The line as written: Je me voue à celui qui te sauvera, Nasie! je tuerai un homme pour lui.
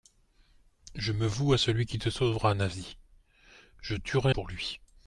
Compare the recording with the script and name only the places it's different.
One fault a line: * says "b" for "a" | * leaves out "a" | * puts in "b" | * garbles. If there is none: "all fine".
* leaves out "un homme"